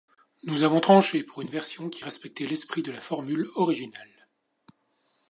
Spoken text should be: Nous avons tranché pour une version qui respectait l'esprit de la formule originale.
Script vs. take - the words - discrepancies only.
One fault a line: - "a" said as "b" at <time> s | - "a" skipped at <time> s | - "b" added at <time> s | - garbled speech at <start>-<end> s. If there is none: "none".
none